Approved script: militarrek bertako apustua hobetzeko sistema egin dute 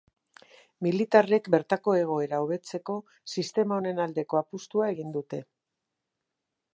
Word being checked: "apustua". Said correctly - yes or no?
no